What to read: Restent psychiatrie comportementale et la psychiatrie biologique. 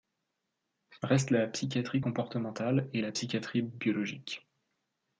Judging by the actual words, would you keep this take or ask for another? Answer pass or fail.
fail